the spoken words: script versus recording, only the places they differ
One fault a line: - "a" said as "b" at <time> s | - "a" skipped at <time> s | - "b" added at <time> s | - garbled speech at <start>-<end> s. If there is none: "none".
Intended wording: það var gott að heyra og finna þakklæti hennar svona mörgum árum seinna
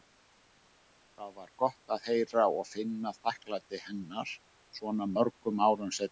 none